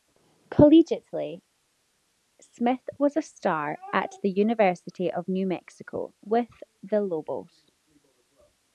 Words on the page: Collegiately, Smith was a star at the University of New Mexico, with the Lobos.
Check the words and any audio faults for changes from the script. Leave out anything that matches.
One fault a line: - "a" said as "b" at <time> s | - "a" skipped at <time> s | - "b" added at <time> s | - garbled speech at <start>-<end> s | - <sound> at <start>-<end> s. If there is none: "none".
none